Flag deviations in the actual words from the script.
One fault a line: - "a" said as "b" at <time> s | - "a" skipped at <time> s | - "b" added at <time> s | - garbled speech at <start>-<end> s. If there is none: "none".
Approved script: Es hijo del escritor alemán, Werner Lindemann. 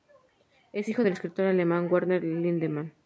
none